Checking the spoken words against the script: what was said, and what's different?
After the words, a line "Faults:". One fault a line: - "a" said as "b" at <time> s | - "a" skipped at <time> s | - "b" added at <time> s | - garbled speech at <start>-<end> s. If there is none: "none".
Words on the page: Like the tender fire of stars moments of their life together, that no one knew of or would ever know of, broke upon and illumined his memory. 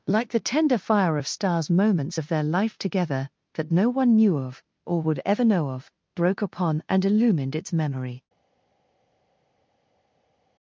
Like the tender fire of stars moments of their life together, that no one knew of or would ever know of, broke upon and illumined its memory.
Faults:
- "his" said as "its" at 7.6 s